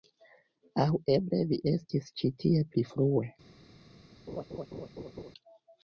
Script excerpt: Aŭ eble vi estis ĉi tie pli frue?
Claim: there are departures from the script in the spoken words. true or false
false